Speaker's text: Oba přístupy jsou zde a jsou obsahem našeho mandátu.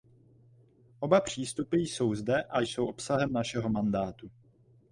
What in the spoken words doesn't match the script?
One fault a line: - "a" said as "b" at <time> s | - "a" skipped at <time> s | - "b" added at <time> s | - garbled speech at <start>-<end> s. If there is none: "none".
none